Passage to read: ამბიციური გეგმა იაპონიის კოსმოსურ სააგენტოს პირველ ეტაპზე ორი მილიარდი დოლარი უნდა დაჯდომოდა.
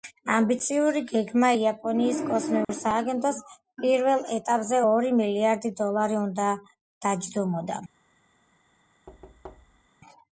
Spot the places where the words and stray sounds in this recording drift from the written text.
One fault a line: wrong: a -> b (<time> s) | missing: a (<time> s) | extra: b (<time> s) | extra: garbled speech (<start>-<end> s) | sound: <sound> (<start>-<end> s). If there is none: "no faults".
sound: dropout (2.6-2.7 s)
sound: thud (9.1-9.9 s)